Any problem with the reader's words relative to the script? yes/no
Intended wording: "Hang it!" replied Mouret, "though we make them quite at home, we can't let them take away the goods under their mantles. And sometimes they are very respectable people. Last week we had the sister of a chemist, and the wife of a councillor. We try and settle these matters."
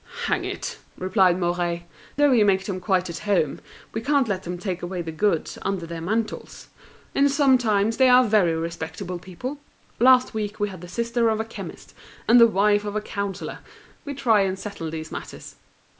no